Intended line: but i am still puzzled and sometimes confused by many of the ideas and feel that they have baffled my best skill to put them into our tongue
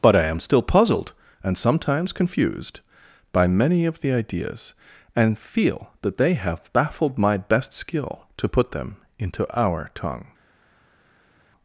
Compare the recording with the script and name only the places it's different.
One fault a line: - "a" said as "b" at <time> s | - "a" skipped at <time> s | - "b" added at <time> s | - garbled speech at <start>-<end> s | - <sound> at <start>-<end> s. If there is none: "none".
none